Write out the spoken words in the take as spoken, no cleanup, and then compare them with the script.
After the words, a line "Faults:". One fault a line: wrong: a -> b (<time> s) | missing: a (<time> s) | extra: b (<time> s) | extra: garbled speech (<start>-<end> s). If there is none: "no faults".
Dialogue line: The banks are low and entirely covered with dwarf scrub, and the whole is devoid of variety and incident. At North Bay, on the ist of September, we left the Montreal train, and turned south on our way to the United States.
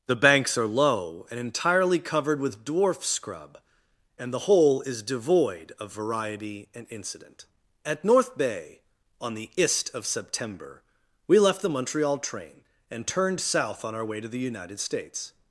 The banks are low and entirely covered with dwarf scrub, and the whole is devoid of variety and incident. At North Bay, on the ist of September, we left the Montreal train, and turned south on our way to the United States.
Faults:
no faults